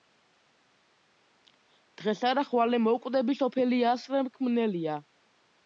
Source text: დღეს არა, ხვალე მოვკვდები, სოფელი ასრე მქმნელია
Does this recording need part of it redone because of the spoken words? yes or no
no